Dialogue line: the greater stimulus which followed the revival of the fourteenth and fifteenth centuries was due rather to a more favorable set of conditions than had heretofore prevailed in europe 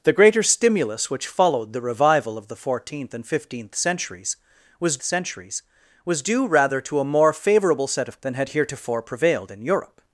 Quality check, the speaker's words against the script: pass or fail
fail